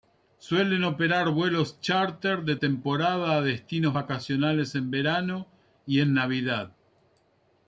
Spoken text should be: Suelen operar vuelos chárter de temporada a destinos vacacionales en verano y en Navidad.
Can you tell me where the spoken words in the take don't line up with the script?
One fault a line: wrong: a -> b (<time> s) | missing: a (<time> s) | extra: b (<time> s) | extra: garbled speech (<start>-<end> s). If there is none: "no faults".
no faults